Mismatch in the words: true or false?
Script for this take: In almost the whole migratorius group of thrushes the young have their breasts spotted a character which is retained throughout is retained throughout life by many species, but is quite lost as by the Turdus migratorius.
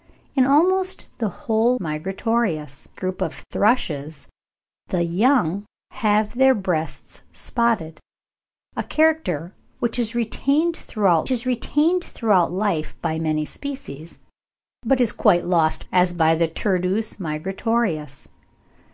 false